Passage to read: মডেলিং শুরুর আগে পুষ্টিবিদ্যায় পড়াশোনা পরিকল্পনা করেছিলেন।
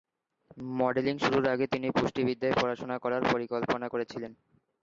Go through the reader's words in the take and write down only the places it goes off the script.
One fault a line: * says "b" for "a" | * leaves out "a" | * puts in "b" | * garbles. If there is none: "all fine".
* puts in "তিনি"
* puts in "করার"